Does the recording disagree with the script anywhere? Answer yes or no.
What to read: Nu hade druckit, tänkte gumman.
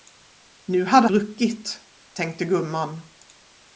no